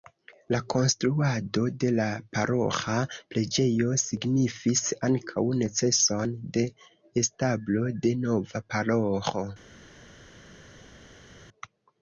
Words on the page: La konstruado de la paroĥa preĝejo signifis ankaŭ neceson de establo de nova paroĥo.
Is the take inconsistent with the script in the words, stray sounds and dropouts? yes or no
no